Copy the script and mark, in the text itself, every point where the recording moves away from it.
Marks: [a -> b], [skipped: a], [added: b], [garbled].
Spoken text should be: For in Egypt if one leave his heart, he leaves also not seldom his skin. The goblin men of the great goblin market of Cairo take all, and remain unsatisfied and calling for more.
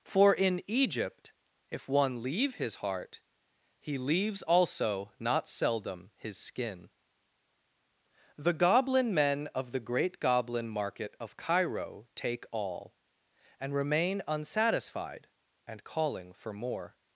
For in Egypt if one leave his heart, he leaves also not seldom his skin. The goblin men of the great goblin market of Cairo take all, and remain unsatisfied and calling for more.